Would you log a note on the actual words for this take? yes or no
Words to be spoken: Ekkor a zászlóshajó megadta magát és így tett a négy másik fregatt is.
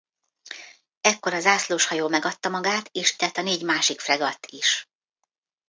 yes